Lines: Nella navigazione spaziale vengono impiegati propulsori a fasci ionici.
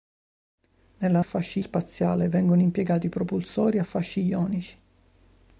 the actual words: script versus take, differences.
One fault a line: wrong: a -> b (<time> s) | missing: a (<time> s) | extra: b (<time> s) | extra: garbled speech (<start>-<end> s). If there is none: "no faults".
wrong: navigazione -> fasci (1.2 s)